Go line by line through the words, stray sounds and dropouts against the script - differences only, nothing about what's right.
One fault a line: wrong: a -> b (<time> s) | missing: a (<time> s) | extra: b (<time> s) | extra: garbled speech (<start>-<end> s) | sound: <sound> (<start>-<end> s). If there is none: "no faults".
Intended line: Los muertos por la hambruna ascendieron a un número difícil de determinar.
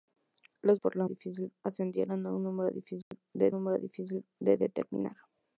missing: muertos (0.8 s)
wrong: hambruna -> difícil (1.1 s)
sound: dropout (3.0-3.1 s)
extra: número difícil de (3.5 s)